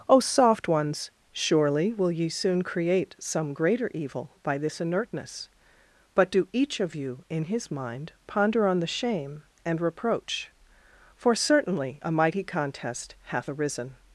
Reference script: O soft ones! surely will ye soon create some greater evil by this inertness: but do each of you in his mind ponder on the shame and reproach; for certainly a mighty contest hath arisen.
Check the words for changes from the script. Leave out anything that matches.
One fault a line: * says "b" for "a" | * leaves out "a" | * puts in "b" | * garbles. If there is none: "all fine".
all fine